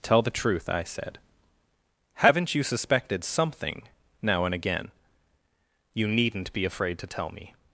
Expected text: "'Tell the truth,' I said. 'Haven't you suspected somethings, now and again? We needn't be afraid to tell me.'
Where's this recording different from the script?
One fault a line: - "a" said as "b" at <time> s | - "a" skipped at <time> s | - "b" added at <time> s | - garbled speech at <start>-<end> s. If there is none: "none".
- "somethings" said as "something" at 3.2 s
- "We" said as "You" at 5.9 s